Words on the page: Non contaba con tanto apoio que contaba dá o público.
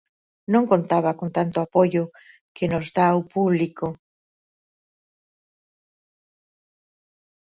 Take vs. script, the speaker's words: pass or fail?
fail